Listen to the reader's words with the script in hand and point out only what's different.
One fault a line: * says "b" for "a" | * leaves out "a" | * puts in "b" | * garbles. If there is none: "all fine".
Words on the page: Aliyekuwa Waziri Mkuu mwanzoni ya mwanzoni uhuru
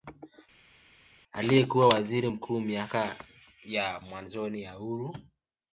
* says "miaka" for "mwanzoni"
* puts in "ya"